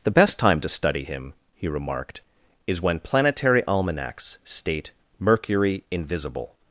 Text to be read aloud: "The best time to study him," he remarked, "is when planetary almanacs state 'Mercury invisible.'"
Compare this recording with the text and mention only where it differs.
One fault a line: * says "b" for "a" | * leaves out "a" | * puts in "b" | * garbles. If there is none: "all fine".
all fine